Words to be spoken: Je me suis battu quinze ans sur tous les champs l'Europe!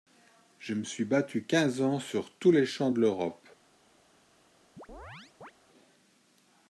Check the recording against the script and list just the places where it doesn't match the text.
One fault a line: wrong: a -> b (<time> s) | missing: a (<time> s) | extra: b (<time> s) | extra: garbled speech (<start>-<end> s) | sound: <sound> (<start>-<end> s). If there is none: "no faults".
extra: de (2.9 s)
sound: chirp (4.8-5.5 s)